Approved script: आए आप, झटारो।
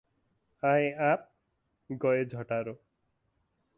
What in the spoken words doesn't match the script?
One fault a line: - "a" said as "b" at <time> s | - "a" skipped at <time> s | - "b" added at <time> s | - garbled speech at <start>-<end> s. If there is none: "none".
- "गए" added at 1.9 s